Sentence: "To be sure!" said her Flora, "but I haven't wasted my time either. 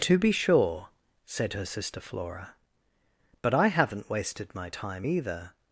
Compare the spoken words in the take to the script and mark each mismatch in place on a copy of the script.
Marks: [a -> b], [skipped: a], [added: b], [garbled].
"To be sure!" said her [added: sister] Flora, "but I haven't wasted my time either.